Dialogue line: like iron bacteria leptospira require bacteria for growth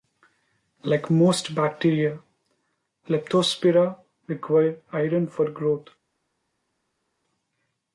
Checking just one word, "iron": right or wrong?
wrong